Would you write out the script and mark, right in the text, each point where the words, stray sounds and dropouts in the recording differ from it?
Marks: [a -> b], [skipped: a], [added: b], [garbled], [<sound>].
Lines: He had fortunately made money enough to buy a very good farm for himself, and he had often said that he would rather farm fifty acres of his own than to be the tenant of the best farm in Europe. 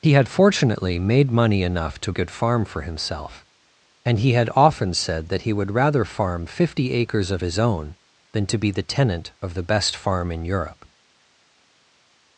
He had fortunately made money enough to [skipped: buy a very] good farm for himself, and he had often said that he would rather farm fifty acres of his own than to be the tenant of the best farm in Europe.